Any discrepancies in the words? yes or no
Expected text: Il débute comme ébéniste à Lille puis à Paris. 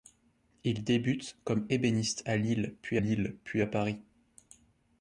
yes